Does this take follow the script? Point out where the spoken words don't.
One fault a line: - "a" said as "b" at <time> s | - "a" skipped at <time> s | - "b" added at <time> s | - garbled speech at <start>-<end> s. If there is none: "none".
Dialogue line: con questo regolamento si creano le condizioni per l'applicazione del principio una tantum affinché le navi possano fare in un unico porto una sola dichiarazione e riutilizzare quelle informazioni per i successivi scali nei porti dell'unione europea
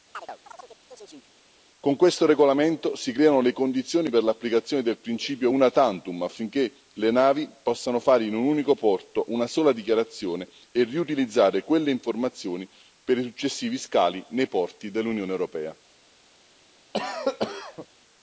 none